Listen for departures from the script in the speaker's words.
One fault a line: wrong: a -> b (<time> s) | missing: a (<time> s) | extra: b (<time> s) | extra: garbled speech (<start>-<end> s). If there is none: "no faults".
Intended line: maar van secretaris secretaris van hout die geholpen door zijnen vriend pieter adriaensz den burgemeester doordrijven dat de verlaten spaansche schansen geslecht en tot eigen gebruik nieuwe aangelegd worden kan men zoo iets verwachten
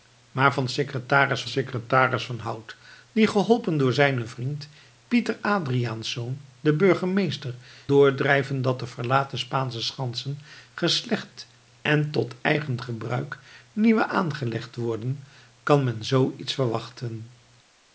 no faults